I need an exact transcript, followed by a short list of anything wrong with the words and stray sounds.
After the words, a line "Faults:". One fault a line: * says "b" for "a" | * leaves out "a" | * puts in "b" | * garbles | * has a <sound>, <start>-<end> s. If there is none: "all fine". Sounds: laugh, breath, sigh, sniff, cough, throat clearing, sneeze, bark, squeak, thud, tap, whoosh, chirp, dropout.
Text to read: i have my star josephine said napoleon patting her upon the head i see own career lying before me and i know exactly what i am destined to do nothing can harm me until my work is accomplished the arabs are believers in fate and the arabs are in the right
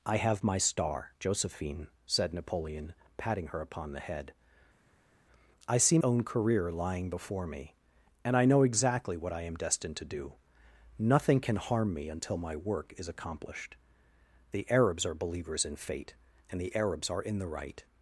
i have my star josephine said napoleon patting her upon the head i see own career lying before me and i know exactly what i am destined to do nothing can harm me until my work is accomplished the arabs are believers in fate and the arabs are in the right
Faults:
all fine